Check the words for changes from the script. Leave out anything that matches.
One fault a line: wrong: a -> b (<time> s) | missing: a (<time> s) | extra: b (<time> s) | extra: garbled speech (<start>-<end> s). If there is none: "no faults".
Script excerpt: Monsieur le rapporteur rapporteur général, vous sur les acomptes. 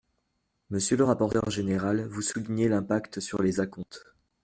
missing: rapporteur (1.5 s)
extra: soulignez l'impact (2.2 s)